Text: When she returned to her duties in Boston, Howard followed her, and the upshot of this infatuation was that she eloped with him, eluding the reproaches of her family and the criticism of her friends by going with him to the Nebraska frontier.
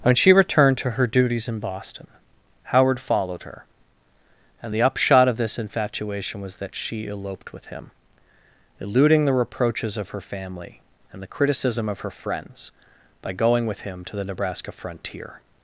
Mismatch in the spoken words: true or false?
false